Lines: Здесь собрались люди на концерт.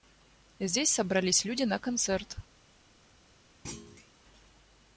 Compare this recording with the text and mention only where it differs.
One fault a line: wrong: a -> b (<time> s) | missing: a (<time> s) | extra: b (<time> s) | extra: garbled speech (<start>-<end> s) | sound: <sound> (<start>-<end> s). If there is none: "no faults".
sound: thud (3.6-4.1 s)